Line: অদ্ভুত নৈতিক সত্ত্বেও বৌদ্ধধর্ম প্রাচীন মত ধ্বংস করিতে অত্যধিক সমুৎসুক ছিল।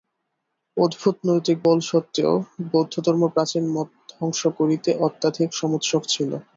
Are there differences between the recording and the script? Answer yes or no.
yes